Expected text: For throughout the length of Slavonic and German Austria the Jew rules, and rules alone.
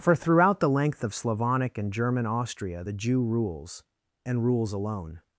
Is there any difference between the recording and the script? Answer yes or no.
no